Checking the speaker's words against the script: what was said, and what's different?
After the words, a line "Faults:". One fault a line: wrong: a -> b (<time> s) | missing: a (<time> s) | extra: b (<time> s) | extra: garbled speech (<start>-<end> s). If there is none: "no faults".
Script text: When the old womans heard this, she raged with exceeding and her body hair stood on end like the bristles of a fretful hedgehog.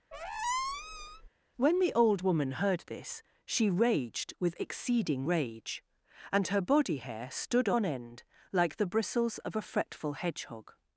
When the old woman heard this, she raged with exceeding rage, and her body hair stood on end like the bristles of a fretful hedgehog.
Faults:
wrong: womans -> woman (2.2 s)
extra: rage (5.3 s)